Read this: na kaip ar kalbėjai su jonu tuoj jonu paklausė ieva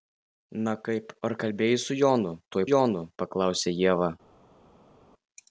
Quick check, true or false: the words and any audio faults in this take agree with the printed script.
true